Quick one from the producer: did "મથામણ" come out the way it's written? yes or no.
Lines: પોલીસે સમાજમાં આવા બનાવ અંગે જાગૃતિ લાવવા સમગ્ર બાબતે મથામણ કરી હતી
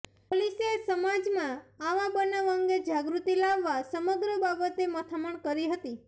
yes